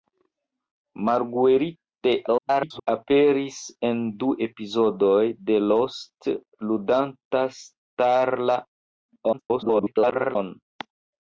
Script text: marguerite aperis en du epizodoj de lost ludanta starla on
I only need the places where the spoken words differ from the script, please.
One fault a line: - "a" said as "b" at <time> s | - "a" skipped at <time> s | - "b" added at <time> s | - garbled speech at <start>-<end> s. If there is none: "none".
- garbled speech at 2.3-2.9 s
- garbled speech at 9.3-10.4 s